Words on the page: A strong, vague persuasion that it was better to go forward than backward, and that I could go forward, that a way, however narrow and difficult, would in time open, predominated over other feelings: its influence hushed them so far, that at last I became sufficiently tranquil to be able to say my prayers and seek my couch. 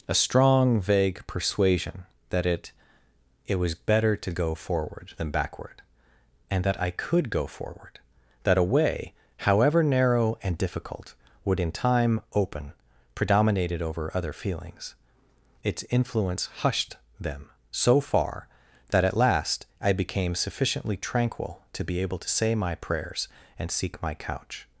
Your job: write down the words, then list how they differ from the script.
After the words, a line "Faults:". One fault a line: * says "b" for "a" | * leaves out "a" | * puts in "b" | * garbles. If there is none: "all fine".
A strong, vague persuasion that it it was better to go forward than backward, and that I could go forward, that a way, however narrow and difficult, would in time open, predominated over other feelings: its influence hushed them so far, that at last I became sufficiently tranquil to be able to say my prayers and seek my couch.
Faults:
* puts in "it"